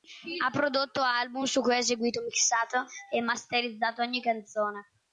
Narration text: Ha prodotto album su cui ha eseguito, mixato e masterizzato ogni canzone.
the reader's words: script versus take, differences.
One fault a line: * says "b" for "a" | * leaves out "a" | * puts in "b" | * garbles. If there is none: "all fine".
all fine